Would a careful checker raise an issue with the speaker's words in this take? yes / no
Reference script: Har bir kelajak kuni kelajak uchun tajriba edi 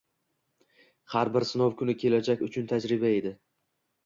yes